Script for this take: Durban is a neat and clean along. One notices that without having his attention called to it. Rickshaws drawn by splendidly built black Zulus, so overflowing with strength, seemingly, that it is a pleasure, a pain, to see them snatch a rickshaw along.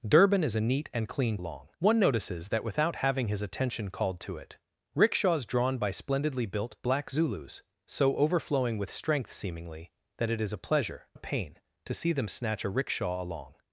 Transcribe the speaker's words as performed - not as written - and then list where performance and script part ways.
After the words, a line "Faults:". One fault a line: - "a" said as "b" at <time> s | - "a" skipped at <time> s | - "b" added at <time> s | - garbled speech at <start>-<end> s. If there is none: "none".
Durban is a neat and clean along. One notices that without having his attention called to it. Rickshaws drawn by splendidly built black Zulus, so overflowing with strength, seemingly, that it is a pleasure, a pain, to see them snatch a rickshaw along.
Faults:
none